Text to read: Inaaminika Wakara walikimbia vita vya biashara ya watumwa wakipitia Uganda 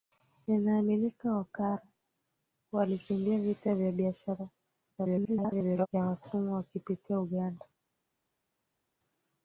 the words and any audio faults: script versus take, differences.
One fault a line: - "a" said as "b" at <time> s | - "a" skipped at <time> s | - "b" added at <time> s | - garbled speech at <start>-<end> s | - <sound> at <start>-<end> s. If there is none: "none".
- garbled speech at 5.0-5.9 s